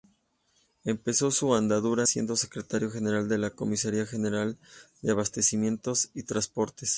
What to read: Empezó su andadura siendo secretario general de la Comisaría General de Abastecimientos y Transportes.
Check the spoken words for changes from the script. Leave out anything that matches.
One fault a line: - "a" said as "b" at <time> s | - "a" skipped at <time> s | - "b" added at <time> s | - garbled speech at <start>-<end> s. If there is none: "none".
none